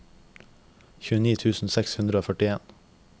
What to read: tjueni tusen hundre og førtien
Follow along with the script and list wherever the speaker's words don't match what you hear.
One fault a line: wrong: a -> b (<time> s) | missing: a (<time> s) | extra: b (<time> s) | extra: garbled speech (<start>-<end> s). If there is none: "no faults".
extra: seks (1.8 s)